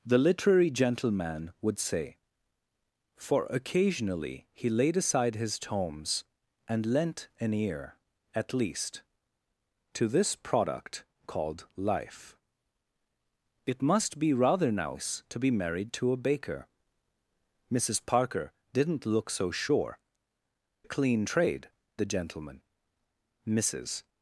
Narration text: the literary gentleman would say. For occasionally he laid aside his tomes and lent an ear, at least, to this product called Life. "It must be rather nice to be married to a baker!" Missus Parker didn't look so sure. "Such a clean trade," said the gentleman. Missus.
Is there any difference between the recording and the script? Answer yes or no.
yes